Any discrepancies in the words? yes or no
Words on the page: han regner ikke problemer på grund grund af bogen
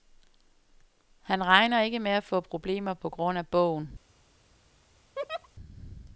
yes